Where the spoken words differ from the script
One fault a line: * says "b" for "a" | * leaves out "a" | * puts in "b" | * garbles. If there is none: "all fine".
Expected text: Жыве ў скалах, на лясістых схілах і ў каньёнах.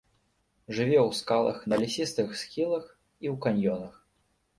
all fine